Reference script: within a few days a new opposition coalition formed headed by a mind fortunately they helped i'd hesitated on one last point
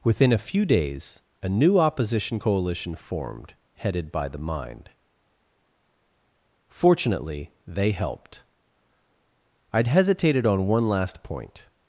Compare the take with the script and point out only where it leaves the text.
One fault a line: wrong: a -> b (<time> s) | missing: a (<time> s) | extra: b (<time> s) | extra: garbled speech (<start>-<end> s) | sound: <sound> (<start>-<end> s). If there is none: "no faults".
wrong: a -> the (4.3 s)